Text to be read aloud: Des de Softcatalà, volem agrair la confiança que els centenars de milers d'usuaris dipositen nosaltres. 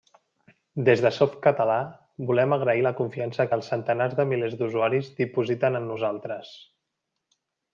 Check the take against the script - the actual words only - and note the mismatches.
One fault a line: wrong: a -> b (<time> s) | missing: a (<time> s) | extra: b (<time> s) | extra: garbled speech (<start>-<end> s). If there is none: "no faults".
extra: en (5.8 s)